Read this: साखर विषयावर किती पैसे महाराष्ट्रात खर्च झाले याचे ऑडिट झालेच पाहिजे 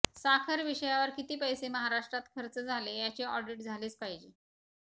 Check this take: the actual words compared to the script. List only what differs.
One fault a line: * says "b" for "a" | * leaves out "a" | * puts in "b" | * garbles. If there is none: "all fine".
all fine